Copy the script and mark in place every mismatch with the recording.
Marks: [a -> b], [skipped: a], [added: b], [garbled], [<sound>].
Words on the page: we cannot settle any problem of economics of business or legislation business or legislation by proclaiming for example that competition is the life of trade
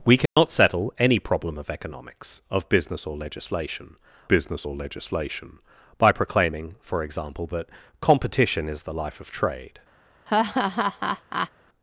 we cannot [dropout] settle any problem of economics of business or legislation business or legislation by proclaiming for example that competition is the life of trade [laugh]